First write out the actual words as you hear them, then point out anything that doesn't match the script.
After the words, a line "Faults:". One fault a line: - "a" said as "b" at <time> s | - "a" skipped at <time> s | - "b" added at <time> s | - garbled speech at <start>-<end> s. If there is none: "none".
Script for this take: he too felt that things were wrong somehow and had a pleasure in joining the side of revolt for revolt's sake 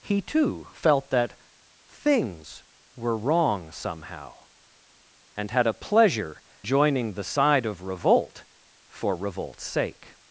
he too felt that things were wrong somehow and had a pleasure joining the side of revolt for revolt's sake
Faults:
- "in" skipped at 6.4 s